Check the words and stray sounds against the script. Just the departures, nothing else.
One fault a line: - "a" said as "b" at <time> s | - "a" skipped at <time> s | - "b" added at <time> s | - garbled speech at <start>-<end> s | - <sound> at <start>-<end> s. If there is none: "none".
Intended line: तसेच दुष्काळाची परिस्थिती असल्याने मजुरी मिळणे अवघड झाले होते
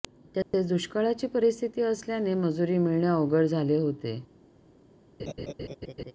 - dropout at 0.4-0.5 s
- laugh at 5.2-6.1 s